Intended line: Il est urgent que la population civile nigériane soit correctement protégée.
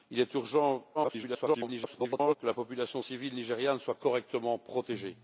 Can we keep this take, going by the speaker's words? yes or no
no